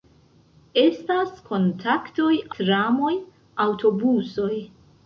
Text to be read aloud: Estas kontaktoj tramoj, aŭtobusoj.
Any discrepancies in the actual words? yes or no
no